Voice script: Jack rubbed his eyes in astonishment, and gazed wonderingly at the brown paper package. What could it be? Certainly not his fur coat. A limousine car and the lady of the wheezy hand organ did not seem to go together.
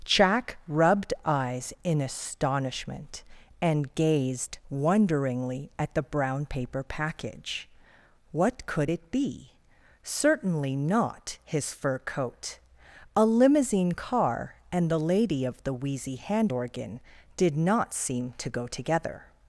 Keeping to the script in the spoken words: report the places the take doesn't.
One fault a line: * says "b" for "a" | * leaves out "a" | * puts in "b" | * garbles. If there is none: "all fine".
* leaves out "his"